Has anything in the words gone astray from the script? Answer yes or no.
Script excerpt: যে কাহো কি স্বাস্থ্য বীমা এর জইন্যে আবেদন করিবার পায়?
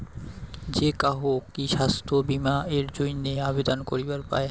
no